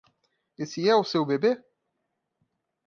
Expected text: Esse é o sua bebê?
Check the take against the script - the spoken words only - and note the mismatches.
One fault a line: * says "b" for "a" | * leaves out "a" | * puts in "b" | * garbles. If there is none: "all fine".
* says "seu" for "sua"